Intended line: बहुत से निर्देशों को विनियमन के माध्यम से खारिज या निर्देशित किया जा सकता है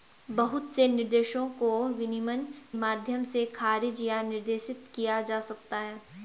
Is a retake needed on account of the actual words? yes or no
yes